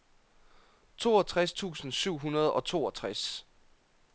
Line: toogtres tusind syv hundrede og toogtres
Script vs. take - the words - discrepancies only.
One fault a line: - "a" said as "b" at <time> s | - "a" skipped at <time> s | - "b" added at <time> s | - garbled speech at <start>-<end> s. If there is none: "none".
none